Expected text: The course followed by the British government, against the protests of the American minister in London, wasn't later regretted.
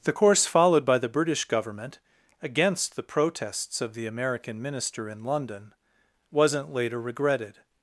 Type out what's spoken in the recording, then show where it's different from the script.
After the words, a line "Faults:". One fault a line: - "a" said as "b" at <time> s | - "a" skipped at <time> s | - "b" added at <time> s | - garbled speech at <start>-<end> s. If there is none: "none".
The course followed by the British government, against the protests of the American minister in London, wasn't later regretted.
Faults:
none